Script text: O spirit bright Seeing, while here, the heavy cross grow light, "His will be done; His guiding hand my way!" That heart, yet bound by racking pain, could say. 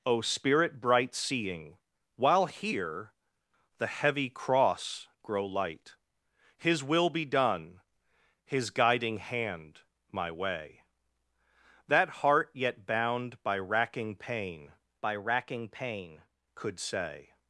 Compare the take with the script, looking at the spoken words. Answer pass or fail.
fail